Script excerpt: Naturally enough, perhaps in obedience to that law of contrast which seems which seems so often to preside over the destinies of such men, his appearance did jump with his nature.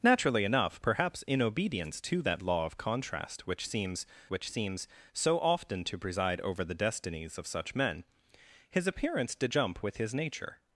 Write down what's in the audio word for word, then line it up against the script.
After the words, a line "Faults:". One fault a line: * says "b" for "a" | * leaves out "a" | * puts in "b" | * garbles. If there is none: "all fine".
Naturally enough, perhaps in obedience to that law of contrast which seems which seems so often to preside over the destinies of such men, his appearance did jump with his nature.
Faults:
all fine